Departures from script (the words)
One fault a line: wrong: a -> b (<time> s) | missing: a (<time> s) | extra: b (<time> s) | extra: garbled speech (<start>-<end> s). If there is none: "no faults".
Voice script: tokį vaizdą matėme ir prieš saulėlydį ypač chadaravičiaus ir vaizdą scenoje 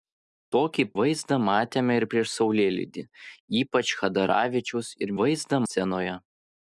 no faults